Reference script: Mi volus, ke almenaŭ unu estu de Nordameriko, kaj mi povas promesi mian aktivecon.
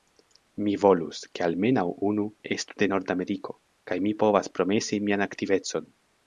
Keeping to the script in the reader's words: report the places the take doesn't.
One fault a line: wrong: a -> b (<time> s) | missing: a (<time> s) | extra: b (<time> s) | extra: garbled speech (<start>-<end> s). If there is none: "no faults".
no faults